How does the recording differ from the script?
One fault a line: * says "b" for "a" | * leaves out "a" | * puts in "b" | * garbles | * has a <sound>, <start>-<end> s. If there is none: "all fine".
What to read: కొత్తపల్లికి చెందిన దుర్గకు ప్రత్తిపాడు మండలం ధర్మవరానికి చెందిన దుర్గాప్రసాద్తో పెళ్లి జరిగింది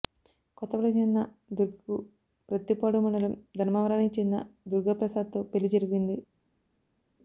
all fine